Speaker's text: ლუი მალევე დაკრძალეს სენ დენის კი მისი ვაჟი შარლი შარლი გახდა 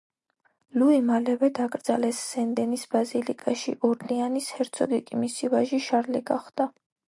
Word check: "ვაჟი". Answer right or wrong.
right